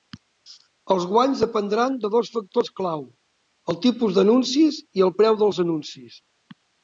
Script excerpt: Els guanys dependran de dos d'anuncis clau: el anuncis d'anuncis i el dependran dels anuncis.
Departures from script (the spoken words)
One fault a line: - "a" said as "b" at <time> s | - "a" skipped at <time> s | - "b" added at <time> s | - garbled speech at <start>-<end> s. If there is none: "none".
- "d'anuncis" said as "factors" at 2.4 s
- "anuncis" said as "tipus" at 3.9 s
- "dependran" said as "preu" at 5.2 s